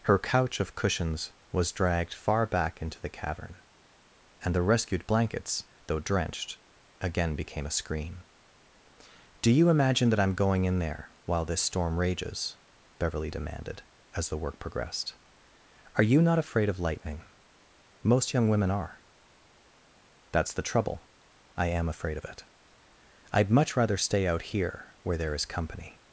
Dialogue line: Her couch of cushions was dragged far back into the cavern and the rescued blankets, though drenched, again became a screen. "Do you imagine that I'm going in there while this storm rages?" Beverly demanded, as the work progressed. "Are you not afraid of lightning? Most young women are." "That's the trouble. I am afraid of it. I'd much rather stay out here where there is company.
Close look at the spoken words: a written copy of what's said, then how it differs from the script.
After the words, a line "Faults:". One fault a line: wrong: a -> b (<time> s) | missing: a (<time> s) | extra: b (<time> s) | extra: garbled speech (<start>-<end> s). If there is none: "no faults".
Her couch of cushions was dragged far back into the cavern and the rescued blankets, though drenched, again became a screen. "Do you imagine that I'm going in there while this storm rages?" Beverly demanded, as the work progressed. "Are you not afraid of lightning? Most young women are." "That's the trouble. I am afraid of it. I'd much rather stay out here where there is company.
Faults:
no faults